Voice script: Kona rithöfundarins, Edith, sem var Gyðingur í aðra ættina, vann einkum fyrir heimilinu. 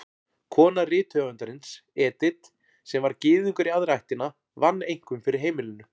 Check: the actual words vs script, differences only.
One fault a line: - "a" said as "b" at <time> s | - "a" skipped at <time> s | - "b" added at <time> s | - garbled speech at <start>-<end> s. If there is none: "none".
none